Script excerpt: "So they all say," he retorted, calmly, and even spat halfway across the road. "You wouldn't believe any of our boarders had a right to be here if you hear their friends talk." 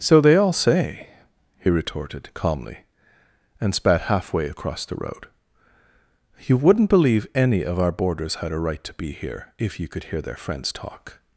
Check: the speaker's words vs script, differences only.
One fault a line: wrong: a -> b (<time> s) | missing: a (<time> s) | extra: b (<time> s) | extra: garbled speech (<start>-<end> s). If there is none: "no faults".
missing: even (3.7 s)
extra: could (9.9 s)